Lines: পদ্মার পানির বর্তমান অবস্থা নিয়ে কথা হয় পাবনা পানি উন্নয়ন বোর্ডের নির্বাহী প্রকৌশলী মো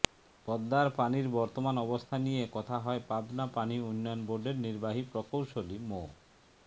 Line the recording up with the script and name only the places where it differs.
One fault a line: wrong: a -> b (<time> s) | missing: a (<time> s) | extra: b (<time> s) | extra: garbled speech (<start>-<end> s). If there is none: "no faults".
no faults